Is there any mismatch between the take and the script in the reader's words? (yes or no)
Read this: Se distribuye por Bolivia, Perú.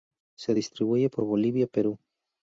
no